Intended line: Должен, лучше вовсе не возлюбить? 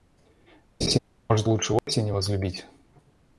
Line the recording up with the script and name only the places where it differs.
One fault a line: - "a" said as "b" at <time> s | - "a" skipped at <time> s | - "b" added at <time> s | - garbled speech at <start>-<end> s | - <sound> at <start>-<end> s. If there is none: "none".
- laugh at 0.8-1.0 s
- "Должен" said as "Может" at 1.3 s
- dropout at 1.8-1.9 s